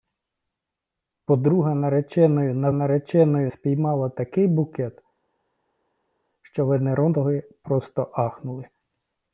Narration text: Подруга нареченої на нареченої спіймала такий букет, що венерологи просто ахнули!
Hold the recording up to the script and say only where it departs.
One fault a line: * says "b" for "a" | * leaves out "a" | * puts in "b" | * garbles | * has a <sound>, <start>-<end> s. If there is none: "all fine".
all fine